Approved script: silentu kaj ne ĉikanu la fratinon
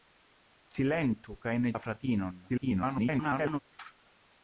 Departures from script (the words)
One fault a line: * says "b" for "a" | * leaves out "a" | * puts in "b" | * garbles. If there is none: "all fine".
* leaves out "ĉikanu"
* garbles